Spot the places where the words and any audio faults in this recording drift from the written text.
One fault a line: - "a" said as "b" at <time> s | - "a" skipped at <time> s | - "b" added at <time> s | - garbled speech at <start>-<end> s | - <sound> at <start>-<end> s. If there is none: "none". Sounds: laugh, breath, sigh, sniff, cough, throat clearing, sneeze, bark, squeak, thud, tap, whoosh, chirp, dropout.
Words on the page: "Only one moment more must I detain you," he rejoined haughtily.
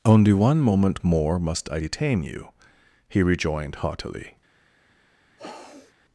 - sniff at 5.4-5.9 s